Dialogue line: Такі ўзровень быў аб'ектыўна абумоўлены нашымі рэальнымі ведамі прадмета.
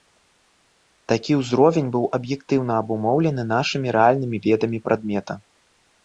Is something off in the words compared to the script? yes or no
no